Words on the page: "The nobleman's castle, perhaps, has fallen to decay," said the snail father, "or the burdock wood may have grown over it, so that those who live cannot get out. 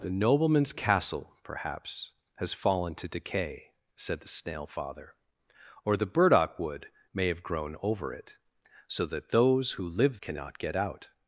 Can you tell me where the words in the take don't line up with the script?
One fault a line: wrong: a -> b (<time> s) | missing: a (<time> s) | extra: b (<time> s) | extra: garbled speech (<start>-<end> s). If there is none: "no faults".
no faults